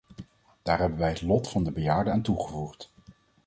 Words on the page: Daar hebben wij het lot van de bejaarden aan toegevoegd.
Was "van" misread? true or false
false